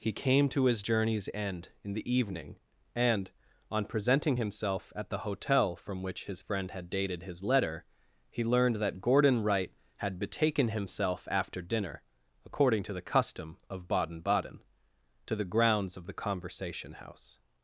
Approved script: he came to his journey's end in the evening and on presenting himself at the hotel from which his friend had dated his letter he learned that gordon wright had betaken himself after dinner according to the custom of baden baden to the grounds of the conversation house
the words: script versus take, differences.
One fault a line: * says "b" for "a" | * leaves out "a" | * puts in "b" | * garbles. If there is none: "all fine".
all fine